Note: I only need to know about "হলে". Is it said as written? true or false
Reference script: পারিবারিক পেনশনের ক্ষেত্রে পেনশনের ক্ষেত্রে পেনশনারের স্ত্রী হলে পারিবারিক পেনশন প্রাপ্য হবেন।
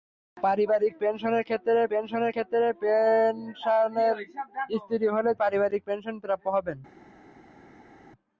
true